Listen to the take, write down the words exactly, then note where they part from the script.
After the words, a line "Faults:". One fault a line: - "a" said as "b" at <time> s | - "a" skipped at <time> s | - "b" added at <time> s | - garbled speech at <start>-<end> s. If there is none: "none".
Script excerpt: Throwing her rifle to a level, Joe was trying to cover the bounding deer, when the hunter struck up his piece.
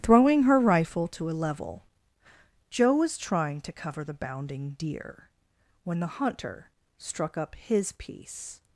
Throwing her rifle to a level, Joe was trying to cover the bounding deer, when the hunter struck up his piece.
Faults:
none